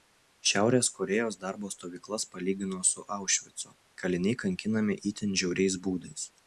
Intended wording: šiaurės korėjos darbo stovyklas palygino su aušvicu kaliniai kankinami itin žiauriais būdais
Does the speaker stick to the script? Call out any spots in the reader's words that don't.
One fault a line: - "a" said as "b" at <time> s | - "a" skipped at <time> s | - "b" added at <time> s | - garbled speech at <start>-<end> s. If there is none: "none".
none